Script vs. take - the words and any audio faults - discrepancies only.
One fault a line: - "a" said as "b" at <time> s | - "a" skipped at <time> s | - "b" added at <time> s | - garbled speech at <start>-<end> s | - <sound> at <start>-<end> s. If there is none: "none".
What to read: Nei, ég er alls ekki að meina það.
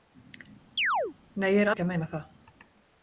- chirp at 0.8-1.1 s
- "alls" skipped at 1.7 s